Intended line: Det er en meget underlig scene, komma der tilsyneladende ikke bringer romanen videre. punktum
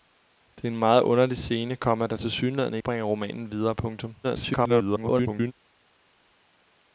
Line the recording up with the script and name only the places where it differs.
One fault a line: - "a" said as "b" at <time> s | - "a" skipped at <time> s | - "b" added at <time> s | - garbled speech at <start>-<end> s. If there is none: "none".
- "ikke" skipped at 2.8 s
- garbled speech at 4.2-5.5 s